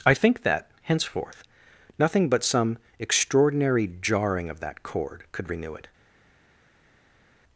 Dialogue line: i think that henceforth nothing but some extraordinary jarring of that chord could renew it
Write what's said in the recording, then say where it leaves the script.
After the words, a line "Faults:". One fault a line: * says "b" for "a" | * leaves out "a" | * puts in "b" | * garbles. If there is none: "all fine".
i think that henceforth nothing but some extraordinary jarring of that chord could renew it
Faults:
all fine